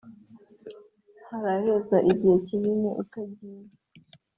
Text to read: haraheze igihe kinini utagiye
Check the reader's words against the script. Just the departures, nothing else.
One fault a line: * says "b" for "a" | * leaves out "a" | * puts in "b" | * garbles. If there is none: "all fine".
all fine